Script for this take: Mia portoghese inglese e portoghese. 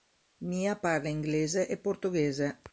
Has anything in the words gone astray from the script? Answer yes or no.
yes